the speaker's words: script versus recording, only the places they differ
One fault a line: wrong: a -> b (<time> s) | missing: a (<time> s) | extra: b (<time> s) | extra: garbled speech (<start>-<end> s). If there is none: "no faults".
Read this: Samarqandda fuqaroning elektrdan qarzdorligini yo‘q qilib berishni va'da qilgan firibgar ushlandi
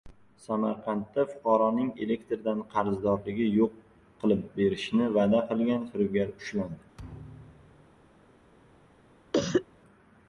no faults